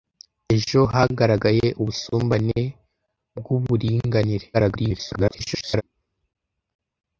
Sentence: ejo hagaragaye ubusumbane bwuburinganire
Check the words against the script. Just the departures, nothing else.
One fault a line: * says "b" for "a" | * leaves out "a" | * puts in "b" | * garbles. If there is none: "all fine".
* garbles